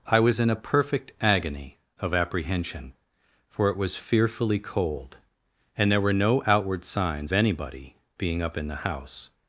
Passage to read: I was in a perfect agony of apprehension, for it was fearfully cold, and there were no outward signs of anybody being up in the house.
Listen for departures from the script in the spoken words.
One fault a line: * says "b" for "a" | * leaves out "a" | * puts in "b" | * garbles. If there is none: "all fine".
* leaves out "of"